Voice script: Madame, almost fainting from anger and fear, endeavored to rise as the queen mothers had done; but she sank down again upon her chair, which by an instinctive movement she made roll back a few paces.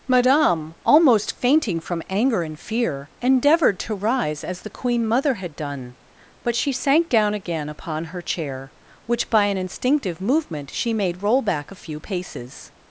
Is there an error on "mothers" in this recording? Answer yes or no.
yes